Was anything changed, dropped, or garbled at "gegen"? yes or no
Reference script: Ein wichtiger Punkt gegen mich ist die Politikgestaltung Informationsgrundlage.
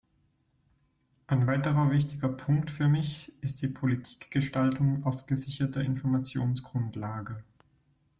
yes